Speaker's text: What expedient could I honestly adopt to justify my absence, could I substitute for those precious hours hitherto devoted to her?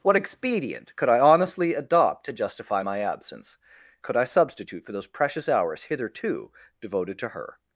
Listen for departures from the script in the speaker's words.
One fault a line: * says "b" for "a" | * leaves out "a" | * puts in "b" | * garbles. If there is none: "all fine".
all fine